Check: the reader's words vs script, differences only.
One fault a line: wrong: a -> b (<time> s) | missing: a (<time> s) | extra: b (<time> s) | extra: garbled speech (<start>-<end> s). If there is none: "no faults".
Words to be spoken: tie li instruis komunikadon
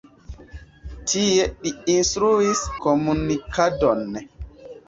no faults